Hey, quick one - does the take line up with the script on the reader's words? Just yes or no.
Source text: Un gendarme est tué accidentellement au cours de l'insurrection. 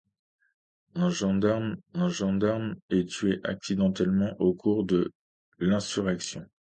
no